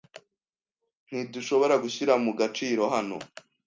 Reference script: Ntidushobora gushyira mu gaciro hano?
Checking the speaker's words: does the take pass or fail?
pass